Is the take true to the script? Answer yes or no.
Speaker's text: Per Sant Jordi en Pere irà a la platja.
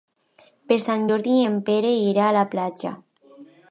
yes